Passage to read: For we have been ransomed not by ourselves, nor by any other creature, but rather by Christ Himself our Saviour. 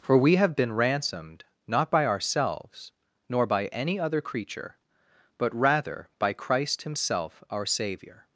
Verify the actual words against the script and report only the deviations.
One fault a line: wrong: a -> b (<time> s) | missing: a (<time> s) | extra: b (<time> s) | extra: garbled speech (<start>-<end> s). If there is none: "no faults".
no faults